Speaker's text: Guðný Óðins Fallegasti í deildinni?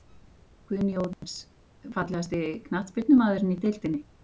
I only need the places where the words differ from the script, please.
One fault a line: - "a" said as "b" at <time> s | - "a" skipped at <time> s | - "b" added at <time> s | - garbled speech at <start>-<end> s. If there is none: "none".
- "knattspyrnumaðurinn" added at 2.7 s